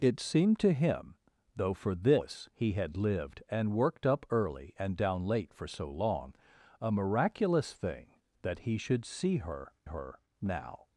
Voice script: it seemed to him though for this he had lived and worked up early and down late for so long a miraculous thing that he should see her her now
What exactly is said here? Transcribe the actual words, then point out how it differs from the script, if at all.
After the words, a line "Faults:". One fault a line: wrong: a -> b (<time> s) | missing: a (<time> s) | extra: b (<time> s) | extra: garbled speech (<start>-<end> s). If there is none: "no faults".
it seemed to him though for this he had lived and worked up early and down late for so long a miraculous thing that he should see her her now
Faults:
no faults